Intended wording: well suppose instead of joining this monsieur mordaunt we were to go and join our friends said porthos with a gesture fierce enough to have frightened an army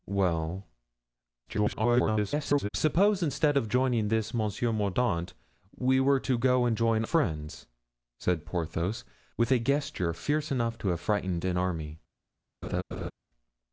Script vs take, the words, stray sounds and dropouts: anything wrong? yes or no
yes